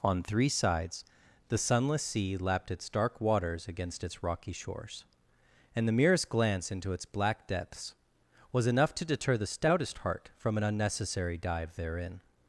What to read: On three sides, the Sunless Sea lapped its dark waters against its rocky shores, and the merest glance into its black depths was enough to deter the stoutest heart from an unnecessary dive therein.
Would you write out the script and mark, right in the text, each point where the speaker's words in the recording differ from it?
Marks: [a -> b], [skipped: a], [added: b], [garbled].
On three sides, the Sunless Sea lapped its dark waters against its rocky shores, and the merest glance into its black depths was enough to deter the stoutest heart from an unnecessary dive therein.